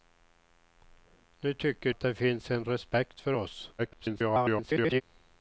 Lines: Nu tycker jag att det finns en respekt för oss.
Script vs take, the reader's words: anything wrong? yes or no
yes